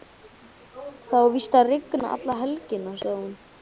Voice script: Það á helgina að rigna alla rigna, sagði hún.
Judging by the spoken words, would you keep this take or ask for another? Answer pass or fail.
fail